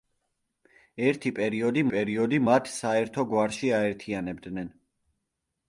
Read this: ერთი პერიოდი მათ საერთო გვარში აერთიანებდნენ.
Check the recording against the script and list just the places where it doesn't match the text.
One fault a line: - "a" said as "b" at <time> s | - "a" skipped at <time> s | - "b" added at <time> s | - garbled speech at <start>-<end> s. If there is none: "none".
- "პერიოდი" added at 2.0 s